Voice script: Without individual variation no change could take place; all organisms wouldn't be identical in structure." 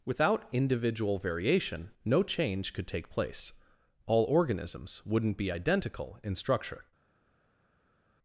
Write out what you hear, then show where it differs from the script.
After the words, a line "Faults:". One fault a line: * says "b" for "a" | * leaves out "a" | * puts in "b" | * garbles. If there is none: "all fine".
Without individual variation no change could take place; all organisms wouldn't be identical in structure."
Faults:
all fine